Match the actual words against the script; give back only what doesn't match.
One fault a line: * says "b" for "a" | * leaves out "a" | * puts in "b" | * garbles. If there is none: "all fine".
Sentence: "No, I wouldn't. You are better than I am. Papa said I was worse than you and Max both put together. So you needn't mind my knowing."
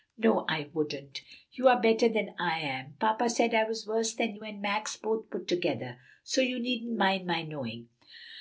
all fine